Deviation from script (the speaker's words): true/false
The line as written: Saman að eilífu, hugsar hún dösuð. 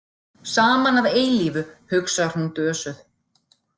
false